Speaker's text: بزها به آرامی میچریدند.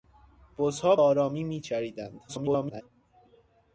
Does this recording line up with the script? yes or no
no